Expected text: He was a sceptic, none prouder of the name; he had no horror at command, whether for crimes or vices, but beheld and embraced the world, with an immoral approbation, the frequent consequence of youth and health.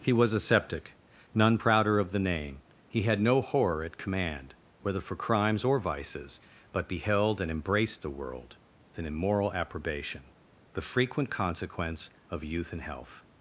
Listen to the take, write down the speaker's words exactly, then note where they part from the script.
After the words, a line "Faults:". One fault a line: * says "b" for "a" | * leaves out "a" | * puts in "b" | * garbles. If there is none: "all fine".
He was a sceptic, none prouder of the name; he had no horror at command, whether for crimes or vices, but beheld and embraced the world, an immoral approbation, the frequent consequence of youth and health.
Faults:
* leaves out "with"